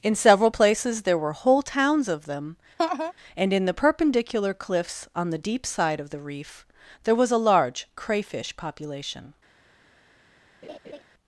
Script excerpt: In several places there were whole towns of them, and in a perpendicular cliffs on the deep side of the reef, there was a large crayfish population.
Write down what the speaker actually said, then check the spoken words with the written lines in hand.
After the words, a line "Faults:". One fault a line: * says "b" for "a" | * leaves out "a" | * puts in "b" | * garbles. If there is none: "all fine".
In several places there were whole towns of them, and in the perpendicular cliffs on the deep side of the reef, there was a large crayfish population.
Faults:
* says "the" for "a"